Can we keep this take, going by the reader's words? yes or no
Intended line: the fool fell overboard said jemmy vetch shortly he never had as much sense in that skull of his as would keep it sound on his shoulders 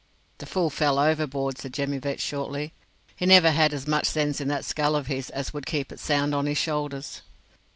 yes